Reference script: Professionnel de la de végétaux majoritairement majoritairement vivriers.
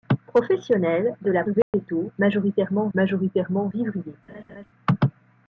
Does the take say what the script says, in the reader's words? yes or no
yes